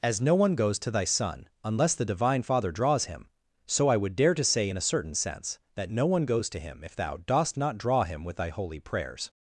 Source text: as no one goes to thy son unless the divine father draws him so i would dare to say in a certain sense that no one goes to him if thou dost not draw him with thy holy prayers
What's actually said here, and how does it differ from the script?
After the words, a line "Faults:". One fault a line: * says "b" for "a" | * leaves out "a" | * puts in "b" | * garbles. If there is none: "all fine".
as no one goes to thy son unless the divine father draws him so i would dare to say in a certain sense that no one goes to him if thou dost not draw him with thy holy prayers
Faults:
all fine